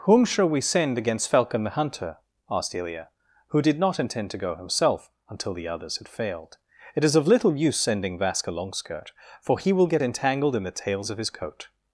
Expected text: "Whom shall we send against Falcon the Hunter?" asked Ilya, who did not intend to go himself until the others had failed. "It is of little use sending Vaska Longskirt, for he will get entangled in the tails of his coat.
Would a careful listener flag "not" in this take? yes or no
no